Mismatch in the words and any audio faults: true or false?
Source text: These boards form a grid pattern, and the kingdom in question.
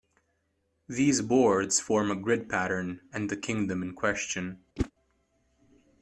true